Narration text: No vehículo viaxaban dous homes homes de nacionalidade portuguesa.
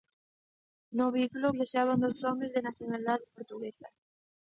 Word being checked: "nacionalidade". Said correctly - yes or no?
yes